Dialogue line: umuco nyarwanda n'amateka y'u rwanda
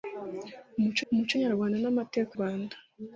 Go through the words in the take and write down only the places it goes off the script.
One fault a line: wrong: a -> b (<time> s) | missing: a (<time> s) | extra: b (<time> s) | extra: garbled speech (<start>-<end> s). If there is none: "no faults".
extra: umuco (1.1 s)
missing: y'u (2.3 s)